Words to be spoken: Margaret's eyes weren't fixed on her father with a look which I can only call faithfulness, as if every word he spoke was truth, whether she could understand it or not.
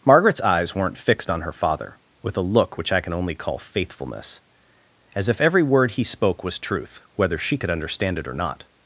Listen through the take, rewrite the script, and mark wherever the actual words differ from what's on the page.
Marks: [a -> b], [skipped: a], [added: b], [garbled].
Margaret's eyes weren't fixed on her father with a look which I can only call faithfulness, as if every word he spoke was truth, whether she could understand it or not.